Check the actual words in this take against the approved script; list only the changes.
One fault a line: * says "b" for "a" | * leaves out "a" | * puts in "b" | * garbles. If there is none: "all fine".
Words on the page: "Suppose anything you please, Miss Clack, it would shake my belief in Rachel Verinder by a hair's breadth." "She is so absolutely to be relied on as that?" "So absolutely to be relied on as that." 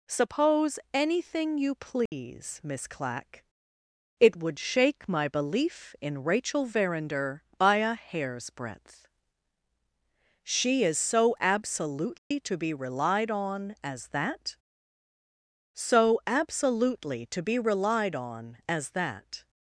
all fine